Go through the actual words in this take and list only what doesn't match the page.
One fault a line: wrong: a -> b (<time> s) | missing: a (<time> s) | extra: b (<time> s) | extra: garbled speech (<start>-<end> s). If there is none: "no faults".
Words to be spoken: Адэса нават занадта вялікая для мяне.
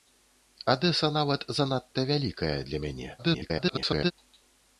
extra: garbled speech (3.2-4.1 s)